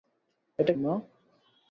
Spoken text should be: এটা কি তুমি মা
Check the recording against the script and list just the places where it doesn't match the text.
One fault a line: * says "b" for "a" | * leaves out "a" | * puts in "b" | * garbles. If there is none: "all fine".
* leaves out "কি তুমি"